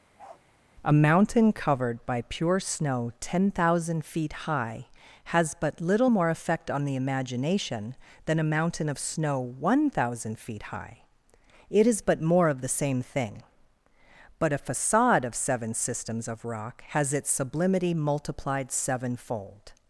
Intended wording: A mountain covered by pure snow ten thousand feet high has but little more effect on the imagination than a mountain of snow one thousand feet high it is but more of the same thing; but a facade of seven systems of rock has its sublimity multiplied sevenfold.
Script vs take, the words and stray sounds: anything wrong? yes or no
yes